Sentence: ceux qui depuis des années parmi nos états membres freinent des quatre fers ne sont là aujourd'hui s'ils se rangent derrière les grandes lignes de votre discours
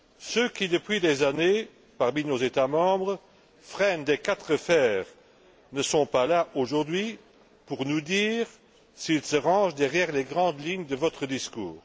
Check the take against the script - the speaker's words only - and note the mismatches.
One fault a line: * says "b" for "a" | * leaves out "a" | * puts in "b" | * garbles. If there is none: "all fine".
* puts in "pas"
* puts in "pour nous dire"